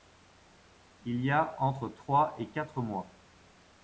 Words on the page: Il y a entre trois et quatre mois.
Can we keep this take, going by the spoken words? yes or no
yes